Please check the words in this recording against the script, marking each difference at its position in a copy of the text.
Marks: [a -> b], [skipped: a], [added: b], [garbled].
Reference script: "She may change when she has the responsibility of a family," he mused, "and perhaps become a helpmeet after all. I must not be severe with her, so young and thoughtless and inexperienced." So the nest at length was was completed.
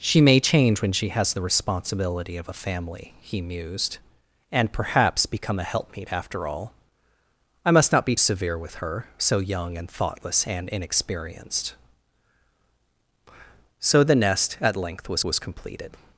"She may change when she has the responsibility of a family," he mused, "and perhaps become a helpmeet after all. I must not be severe with her, so young and thoughtless and inexperienced." So the nest at length was was completed.